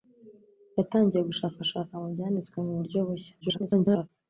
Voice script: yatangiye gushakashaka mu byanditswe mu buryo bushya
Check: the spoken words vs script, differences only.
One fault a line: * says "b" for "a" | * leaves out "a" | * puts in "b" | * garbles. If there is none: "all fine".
* garbles